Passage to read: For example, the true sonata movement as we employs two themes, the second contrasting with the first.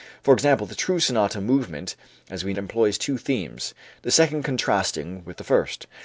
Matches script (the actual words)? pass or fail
pass